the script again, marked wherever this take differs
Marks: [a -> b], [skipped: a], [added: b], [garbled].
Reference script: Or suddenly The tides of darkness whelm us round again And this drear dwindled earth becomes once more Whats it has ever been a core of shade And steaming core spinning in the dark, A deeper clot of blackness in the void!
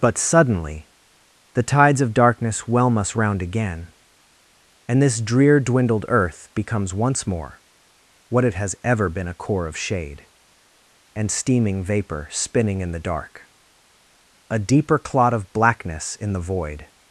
[Or -> But] suddenly The tides of darkness whelm us round again And this drear dwindled earth becomes once more [Whats -> What] it has ever been a core of shade And steaming [core -> vapor] spinning in the dark, A deeper clot of blackness in the void!